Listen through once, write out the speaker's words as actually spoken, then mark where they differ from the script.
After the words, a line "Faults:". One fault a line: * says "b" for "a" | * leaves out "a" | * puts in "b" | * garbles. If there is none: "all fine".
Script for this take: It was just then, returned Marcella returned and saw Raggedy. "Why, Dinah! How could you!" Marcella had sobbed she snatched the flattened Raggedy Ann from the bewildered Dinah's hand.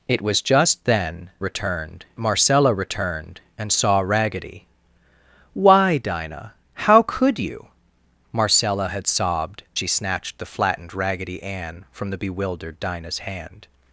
It was just then, returned Marcella returned and saw Raggedy. "Why, Dinah! How could you!" Marcella had sobbed she snatched the flattened Raggedy Ann from the bewildered Dinah's hand.
Faults:
all fine